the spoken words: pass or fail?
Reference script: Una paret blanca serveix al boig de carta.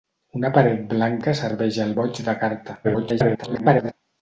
fail